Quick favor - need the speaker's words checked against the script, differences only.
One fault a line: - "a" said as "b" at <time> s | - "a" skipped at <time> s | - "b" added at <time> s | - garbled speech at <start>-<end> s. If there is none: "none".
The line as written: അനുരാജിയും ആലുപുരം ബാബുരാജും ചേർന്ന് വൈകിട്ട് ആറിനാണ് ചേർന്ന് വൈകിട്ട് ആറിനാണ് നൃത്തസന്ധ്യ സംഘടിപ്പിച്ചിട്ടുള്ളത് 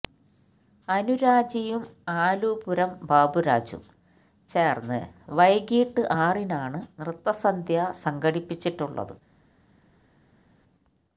- "ചേർന്ന് വൈകിട്ട് ആറിനാണ്" skipped at 6.8 s